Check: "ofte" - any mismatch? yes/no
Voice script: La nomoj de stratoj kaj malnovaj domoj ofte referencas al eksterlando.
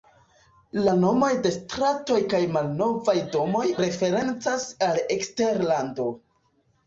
yes